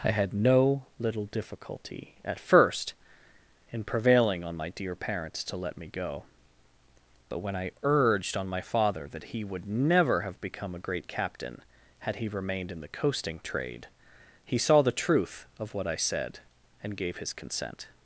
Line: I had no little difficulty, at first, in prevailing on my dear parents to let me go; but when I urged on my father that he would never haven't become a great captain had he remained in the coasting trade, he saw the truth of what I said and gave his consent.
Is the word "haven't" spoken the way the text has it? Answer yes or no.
no